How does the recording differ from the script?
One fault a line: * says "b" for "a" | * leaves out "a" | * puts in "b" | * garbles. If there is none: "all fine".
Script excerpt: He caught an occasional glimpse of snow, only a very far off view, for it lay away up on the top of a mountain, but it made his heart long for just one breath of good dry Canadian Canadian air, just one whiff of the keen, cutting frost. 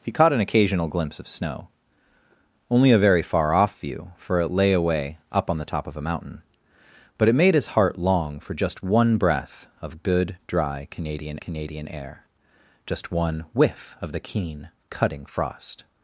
all fine